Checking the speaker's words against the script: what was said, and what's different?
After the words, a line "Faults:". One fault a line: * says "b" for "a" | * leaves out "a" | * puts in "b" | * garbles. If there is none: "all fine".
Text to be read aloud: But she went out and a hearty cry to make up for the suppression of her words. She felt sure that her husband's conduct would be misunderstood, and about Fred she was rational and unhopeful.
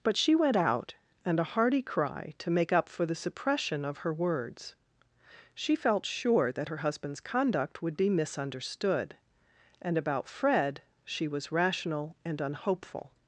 But she went out and a hearty cry to make up for the suppression of her words. She felt sure that her husband's conduct would be misunderstood, and about Fred she was rational and unhopeful.
Faults:
all fine